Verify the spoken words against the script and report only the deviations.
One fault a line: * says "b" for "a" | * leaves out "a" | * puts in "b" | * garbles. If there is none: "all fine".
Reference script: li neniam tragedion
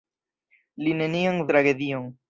all fine